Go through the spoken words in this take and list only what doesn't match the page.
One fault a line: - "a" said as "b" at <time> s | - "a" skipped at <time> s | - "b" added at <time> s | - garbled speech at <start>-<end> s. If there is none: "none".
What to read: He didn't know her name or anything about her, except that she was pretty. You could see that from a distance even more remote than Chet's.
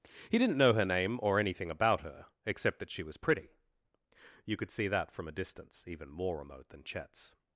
none